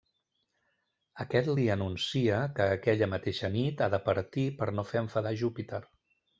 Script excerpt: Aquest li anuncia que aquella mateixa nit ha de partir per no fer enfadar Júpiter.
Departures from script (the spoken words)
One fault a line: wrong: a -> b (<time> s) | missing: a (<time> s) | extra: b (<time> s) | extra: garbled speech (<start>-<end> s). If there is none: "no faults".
no faults